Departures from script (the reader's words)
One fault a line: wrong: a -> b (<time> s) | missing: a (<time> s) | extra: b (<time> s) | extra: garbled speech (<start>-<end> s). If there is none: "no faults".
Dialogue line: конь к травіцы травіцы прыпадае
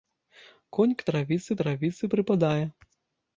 no faults